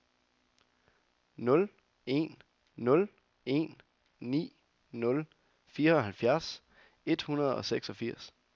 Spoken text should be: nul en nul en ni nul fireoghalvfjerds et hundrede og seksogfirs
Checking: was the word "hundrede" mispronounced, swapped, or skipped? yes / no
no